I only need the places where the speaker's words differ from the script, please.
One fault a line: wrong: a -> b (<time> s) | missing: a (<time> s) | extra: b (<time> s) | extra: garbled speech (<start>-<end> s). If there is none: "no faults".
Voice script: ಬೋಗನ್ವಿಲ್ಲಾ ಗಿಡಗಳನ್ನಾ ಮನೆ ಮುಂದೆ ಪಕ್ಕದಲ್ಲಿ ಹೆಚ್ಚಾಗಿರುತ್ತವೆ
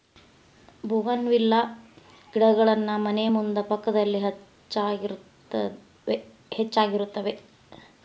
no faults